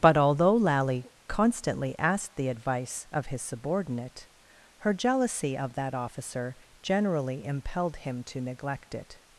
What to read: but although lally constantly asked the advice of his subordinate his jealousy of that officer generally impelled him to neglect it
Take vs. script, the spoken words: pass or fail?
fail